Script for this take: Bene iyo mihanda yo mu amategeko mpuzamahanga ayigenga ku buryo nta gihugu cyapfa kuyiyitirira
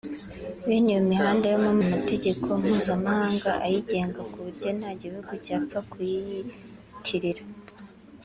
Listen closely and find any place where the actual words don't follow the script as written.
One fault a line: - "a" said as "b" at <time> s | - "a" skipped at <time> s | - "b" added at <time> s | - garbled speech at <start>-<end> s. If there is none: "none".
none